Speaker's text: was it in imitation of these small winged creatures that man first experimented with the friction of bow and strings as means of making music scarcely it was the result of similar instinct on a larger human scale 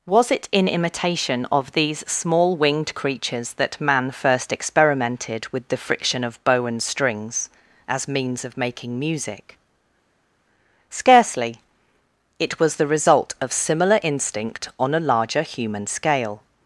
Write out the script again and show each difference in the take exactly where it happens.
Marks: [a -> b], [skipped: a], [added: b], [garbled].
was it in imitation of these small winged creatures that man first experimented with the friction of bow and strings as means of making music scarcely it was the result of similar instinct on a larger human scale